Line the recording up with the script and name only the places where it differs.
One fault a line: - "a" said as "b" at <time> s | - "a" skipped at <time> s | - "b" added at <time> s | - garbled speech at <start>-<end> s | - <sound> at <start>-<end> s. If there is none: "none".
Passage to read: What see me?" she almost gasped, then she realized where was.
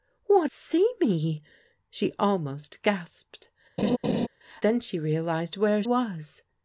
- laugh at 3.8-4.3 s